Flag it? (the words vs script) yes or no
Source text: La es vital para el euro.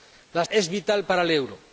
no